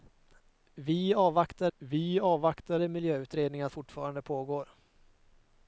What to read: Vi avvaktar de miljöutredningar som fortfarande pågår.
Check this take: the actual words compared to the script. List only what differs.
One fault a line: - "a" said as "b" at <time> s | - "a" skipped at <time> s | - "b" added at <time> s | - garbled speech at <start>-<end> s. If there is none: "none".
- "vi avvaktar" added at 1.8 s
- "som" skipped at 3.7 s